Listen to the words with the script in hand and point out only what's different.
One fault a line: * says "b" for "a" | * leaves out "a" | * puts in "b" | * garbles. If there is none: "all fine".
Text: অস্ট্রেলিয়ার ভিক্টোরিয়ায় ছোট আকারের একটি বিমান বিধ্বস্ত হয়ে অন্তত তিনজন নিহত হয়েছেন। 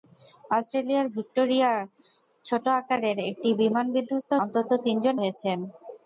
* leaves out "হয়ে"
* leaves out "নিহত"